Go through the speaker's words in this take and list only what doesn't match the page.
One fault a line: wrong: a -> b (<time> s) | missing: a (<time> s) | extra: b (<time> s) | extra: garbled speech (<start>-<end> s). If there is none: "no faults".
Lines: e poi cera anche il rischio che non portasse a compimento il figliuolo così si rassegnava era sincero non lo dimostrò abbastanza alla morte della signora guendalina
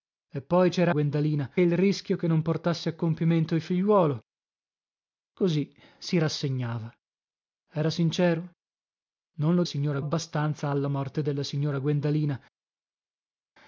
wrong: anche -> guendalina (0.9 s)
wrong: dimostrò -> signora (9.6 s)